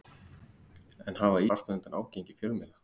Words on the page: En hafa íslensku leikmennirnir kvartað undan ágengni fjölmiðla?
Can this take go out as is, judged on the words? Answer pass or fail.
fail